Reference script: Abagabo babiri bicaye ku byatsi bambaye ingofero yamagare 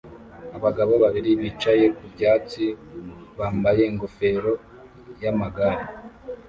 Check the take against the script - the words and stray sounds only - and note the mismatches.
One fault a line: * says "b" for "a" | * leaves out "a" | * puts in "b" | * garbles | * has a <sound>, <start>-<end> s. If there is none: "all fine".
all fine